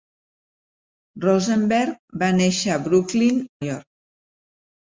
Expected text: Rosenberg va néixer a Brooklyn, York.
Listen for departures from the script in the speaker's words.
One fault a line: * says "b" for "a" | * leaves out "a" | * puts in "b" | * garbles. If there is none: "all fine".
all fine